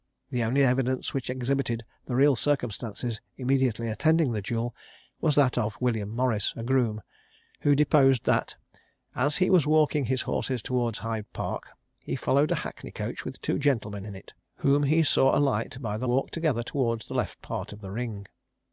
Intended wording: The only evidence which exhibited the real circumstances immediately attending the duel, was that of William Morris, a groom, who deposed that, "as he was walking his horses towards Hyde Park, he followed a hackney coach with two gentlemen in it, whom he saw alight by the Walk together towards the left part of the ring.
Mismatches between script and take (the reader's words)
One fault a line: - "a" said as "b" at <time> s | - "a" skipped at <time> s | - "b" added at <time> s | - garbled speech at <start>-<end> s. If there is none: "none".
none